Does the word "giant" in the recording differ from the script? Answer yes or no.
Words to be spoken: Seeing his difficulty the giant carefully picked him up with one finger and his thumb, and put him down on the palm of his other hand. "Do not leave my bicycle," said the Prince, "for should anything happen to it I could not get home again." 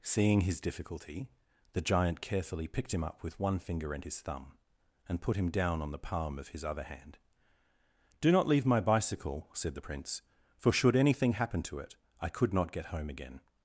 no